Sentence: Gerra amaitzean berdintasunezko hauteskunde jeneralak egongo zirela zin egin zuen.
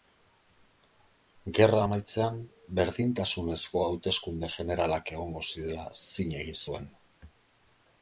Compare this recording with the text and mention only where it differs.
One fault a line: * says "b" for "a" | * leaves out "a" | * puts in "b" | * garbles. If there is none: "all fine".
all fine